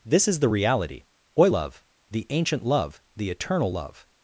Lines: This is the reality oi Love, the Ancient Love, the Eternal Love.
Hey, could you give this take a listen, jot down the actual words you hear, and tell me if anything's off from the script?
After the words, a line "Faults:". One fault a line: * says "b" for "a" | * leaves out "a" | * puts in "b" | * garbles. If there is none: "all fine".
This is the reality oi Love, the Ancient Love, the Eternal Love.
Faults:
all fine